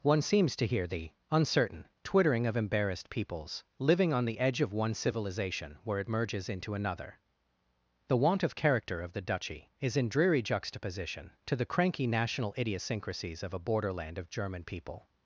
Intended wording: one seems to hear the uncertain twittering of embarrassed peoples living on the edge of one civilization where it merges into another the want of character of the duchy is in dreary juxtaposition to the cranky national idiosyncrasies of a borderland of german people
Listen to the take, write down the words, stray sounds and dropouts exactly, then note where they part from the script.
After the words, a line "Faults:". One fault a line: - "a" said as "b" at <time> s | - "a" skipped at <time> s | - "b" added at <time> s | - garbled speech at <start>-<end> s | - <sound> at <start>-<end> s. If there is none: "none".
one seems to hear the uncertain twittering of embarrassed peoples living on the edge of one civilization where it merges into another the want of character of the duchy is in dreary juxtaposition to the cranky national idiosyncrasies of a borderland of german people
Faults:
none